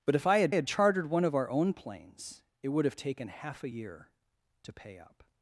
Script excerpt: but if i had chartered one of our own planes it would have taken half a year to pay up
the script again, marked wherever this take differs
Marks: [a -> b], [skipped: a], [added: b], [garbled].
but if i had [added: had] chartered one of our own planes it would have taken half a year to pay up